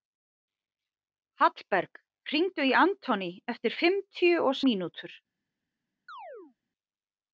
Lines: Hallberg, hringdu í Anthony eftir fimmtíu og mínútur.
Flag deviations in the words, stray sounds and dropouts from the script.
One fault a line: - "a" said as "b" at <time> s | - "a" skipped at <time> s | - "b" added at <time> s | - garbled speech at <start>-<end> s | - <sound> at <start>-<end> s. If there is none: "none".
- chirp at 6.1-6.6 s